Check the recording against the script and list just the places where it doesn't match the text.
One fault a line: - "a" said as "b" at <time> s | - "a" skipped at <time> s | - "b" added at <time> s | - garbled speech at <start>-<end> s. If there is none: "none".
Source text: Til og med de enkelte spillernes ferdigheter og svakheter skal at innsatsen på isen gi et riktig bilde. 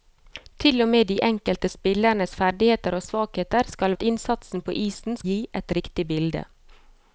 none